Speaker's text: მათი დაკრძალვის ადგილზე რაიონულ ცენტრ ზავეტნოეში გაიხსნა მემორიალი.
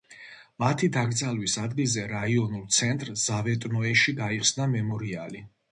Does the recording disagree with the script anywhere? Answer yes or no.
no